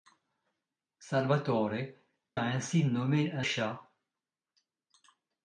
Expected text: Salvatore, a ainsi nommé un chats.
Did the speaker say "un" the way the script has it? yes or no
yes